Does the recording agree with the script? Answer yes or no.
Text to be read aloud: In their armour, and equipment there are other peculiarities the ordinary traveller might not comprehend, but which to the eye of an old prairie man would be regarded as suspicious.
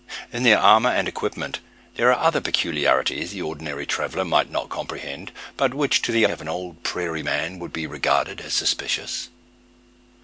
no